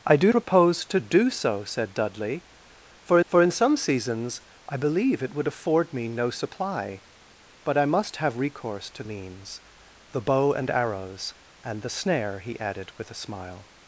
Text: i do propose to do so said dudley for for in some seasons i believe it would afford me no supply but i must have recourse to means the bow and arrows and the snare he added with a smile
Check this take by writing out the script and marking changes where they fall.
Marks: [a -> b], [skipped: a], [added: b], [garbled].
i do propose to do so said dudley for for in some seasons i believe it would afford me no supply but i must have recourse to means the bow and arrows and the snare he added with a smile